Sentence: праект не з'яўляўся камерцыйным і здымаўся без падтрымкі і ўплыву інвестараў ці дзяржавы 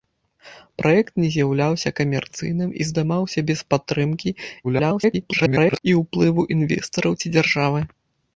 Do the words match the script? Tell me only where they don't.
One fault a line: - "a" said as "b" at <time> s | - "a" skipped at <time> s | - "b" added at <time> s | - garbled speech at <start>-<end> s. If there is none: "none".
- garbled speech at 4.6-5.8 s